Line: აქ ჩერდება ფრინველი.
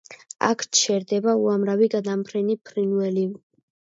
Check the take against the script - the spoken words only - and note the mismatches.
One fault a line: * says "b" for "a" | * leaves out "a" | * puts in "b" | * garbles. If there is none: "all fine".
* puts in "უამრავი გადამფრენი"